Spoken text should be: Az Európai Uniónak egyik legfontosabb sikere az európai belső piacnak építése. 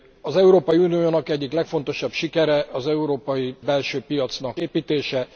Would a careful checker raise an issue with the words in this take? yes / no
no